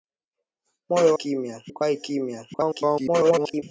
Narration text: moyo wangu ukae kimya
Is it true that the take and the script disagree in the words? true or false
true